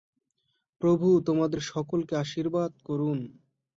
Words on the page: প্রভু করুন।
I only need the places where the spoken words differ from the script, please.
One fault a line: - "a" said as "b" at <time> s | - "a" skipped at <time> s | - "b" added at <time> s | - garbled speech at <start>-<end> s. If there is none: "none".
- "তোমাদের সকলকে আশীর্বাদ" added at 1.2 s